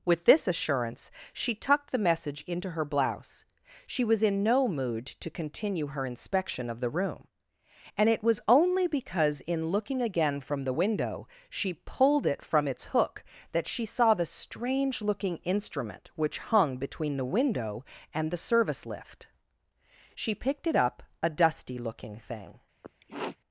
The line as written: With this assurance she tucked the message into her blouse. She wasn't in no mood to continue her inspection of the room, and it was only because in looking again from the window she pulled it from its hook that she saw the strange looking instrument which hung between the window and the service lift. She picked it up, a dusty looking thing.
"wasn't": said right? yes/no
no